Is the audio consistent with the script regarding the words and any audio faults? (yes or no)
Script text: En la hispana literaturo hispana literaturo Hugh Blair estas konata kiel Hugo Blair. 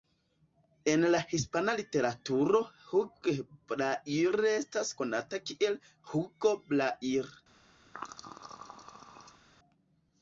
no